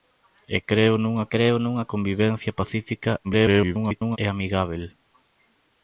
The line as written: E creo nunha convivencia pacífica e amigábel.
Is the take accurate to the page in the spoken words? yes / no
no